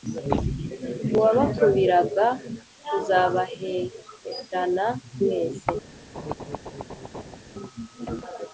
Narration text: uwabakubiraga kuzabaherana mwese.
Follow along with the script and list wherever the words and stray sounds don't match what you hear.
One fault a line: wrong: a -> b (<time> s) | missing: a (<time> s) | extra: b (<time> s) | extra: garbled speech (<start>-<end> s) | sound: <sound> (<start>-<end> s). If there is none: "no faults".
sound: laugh (6.1-7.4 s)